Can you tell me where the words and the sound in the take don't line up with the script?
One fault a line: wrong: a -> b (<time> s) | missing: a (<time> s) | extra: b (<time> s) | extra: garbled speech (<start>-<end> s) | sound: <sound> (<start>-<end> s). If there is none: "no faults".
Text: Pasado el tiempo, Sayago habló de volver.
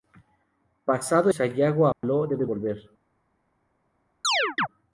missing: el tiempo (1.3 s)
sound: dropout (1.9-2.0 s)
extra: de (2.4 s)
sound: chirp (4.2-4.7 s)